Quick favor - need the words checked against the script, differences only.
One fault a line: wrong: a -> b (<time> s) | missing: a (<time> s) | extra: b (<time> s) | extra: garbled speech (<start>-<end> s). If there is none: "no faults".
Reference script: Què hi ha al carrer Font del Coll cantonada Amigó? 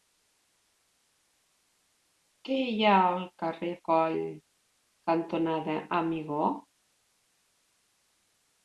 missing: Font del (3.7 s)